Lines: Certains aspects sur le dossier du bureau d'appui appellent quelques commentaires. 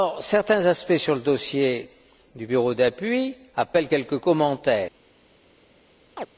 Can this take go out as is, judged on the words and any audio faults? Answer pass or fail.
fail